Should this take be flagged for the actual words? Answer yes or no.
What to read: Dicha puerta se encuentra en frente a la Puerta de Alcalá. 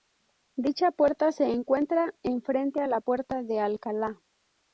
no